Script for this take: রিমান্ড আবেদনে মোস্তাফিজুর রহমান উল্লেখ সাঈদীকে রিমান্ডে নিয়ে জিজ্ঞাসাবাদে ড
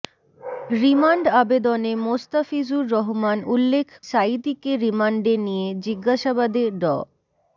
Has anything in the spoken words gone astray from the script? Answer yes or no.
no